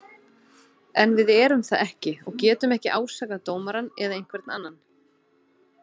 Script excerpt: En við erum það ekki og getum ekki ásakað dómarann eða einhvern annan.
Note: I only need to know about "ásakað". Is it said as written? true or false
true